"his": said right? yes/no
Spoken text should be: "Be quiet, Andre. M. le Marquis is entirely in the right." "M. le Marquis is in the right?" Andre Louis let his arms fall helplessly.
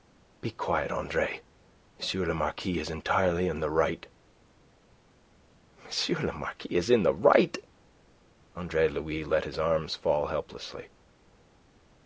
yes